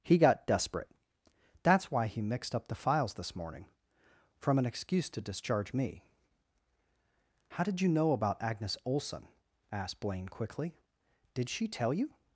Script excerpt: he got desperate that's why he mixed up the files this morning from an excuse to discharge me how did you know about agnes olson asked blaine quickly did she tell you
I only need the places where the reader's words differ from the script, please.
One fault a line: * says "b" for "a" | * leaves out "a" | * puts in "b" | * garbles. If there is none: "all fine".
all fine